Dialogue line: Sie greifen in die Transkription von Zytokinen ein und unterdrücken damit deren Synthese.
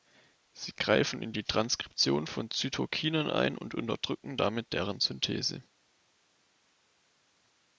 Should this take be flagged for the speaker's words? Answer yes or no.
no